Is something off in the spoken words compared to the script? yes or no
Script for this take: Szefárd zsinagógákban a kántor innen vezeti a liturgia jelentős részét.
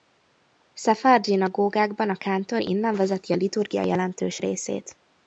no